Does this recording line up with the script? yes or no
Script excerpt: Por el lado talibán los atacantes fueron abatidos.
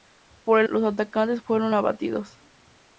no